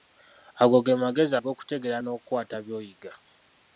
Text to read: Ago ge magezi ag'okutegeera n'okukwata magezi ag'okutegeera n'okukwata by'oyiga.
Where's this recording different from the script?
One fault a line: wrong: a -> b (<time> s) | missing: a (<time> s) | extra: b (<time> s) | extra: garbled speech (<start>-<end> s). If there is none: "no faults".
missing: magezi ag'okutegeera n'okukwata (2.6 s)